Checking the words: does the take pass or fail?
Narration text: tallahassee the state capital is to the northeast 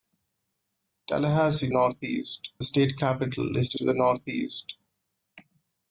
fail